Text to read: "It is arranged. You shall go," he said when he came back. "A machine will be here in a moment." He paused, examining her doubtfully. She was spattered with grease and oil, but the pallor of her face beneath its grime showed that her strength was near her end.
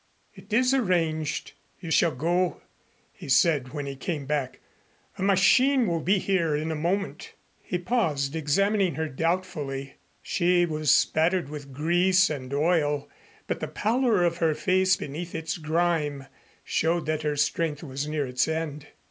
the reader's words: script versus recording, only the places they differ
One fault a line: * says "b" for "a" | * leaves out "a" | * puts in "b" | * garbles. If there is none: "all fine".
* says "its" for "her"